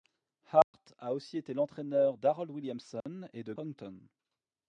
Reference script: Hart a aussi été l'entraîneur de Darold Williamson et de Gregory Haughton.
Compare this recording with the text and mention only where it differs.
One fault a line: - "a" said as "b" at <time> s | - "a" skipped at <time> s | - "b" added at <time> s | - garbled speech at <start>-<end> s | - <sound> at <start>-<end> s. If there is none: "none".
- dropout at 0.6-0.7 s
- "de" skipped at 2.2 s
- dropout at 3.0-3.1 s
- "Gregory" skipped at 3.5 s